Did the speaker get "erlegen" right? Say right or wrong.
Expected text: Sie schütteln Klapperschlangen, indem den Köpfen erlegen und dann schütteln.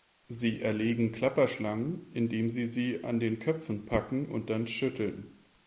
wrong